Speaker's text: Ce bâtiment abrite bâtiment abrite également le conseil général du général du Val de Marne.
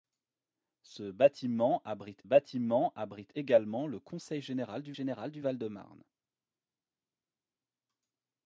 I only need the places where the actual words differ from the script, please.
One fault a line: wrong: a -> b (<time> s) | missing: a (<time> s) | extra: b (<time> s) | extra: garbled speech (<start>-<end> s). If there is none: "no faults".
no faults